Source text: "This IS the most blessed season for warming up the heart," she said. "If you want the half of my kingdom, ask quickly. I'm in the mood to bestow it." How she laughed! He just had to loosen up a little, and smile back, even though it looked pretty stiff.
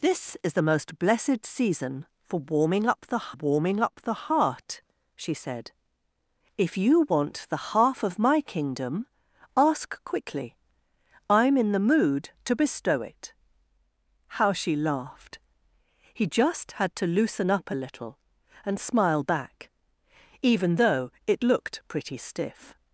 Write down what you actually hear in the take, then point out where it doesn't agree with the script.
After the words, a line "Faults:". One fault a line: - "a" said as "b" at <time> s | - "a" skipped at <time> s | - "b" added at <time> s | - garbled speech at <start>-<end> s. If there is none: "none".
"This IS the most blessed season for warming up the warming up the heart," she said. "If you want the half of my kingdom, ask quickly. I'm in the mood to bestow it." How she laughed! He just had to loosen up a little, and smile back, even though it looked pretty stiff.
Faults:
- "warming up the" added at 3.3 s